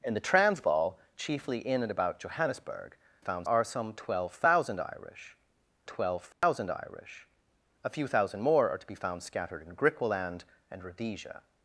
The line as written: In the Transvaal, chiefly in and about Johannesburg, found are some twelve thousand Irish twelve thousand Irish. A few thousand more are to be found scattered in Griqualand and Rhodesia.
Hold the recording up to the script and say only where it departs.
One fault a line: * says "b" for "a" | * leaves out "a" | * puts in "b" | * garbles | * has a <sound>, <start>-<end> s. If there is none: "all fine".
* has a dropout, 6.3-6.4 s